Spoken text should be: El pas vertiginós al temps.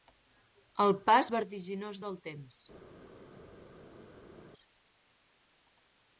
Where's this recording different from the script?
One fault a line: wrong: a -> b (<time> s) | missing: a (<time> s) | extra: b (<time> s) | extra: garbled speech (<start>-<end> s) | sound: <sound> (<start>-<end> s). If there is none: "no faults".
wrong: al -> del (2.0 s)